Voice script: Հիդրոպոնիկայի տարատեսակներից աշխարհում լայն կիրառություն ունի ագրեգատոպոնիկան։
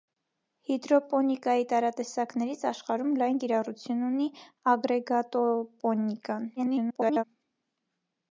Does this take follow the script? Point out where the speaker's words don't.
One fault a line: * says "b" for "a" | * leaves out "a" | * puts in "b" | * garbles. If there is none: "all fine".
* garbles